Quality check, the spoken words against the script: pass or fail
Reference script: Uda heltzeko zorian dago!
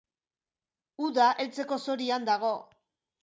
pass